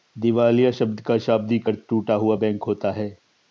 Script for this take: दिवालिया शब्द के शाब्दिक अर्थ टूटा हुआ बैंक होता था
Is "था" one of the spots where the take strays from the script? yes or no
yes